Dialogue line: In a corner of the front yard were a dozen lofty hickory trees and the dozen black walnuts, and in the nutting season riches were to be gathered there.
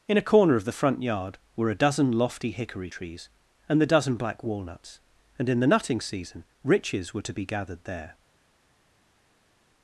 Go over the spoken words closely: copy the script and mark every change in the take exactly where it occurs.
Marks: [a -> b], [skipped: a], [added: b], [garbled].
In a corner of the front yard were a dozen lofty hickory trees and the dozen black walnuts, and in the nutting season riches were to be gathered there.